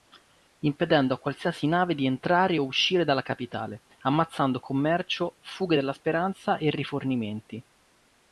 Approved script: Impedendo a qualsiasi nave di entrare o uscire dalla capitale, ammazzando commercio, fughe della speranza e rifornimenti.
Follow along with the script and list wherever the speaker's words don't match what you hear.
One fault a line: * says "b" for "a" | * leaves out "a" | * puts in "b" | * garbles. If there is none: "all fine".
all fine